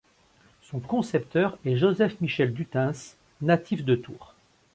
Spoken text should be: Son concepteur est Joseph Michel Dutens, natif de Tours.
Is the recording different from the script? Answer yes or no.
no